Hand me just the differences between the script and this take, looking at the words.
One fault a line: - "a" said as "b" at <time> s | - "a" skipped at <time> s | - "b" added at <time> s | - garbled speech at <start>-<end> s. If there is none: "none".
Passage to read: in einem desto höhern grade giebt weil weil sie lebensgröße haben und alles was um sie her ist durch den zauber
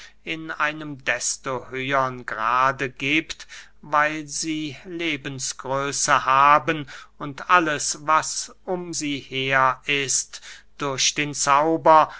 - "weil" skipped at 4.3 s